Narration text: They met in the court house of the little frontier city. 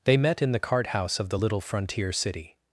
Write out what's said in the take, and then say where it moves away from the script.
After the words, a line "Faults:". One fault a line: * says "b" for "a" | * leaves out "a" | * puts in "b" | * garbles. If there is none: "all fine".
They met in the cart house of the little frontier city.
Faults:
* says "cart" for "court"